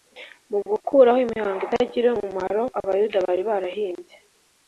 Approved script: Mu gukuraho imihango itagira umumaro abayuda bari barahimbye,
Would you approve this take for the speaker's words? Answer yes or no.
yes